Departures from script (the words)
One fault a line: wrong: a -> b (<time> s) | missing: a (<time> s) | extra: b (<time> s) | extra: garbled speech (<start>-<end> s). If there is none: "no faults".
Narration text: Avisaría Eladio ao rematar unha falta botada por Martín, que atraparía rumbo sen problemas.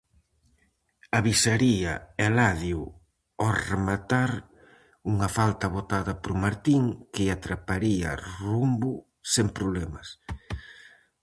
no faults